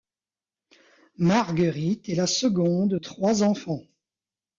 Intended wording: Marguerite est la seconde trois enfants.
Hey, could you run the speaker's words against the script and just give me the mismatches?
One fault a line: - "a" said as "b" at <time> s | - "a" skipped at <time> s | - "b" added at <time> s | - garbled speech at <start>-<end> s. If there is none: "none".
none